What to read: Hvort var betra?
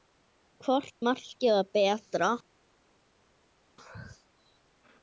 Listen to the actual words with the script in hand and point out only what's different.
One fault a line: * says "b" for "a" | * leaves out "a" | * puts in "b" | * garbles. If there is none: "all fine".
* puts in "markið"